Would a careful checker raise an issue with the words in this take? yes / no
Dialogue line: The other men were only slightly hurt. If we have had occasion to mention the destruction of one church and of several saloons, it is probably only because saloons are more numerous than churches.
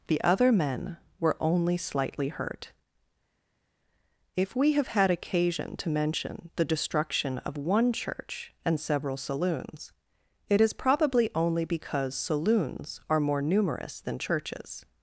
yes